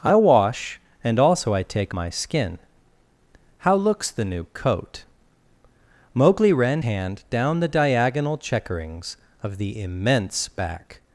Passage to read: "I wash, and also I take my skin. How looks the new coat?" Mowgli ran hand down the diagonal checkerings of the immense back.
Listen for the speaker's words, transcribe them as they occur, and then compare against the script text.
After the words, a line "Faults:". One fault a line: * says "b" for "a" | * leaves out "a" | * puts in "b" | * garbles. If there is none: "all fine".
"I wash, and also I take my skin. How looks the new coat?" Mowgli ran hand down the diagonal checkerings of the immense back.
Faults:
all fine